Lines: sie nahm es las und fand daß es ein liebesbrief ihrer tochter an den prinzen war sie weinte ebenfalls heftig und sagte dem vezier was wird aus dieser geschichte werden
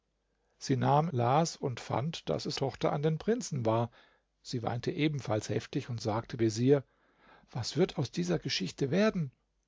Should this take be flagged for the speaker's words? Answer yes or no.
yes